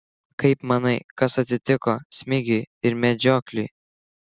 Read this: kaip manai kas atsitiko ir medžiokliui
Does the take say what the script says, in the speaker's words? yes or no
no